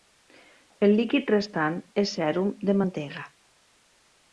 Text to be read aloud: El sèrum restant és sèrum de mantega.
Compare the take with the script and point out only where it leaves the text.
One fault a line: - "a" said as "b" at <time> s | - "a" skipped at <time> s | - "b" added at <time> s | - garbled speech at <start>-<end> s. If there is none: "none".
- "sèrum" said as "líquid" at 1.0 s